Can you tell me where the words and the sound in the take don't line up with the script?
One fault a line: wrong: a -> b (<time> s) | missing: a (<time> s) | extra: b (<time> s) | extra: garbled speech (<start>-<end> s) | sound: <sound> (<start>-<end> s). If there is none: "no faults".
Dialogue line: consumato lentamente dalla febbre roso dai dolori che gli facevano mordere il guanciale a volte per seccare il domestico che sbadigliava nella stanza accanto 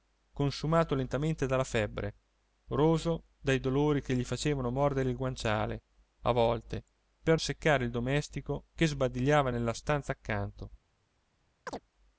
sound: chirp (11.7-11.8 s)